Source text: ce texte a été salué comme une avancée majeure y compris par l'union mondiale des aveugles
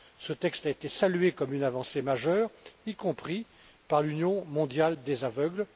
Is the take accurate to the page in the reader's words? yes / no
yes